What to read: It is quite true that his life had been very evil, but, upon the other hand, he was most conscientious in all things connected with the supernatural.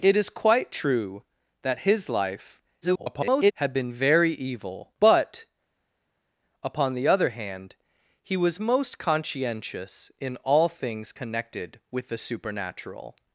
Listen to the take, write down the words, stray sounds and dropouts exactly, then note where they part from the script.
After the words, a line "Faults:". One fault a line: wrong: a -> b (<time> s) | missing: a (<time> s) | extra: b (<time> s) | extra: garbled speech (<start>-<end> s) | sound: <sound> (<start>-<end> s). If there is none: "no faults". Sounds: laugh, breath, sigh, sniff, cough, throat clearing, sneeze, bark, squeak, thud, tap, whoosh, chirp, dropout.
It is quite true that his life [garbled] had been very evil, but, upon the other hand, he was most conscientious in all things connected with the supernatural.
Faults:
extra: garbled speech (2.8-3.5 s)